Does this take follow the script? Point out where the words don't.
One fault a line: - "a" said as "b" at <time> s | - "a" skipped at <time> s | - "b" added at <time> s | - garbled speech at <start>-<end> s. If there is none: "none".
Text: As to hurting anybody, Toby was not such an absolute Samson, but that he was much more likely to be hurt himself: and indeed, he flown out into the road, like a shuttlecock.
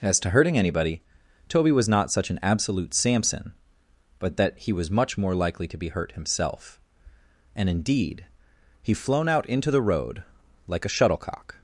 none